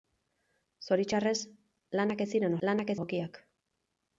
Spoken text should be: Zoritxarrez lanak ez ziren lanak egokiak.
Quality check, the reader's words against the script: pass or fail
pass